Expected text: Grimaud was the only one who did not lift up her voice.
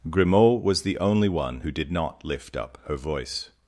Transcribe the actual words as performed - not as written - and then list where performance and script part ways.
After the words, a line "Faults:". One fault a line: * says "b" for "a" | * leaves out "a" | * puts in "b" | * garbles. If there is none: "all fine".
Grimaud was the only one who did not lift up her voice.
Faults:
all fine